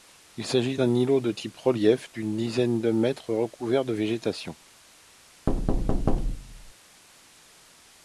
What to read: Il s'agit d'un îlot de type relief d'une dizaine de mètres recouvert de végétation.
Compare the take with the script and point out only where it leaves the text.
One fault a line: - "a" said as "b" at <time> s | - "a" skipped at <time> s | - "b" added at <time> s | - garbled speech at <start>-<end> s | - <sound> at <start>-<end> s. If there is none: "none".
- thud at 5.5-6.7 s